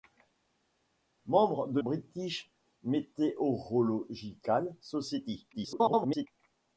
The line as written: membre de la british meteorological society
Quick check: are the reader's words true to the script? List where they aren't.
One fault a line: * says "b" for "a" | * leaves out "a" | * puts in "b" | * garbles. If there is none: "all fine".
* leaves out "la"
* garbles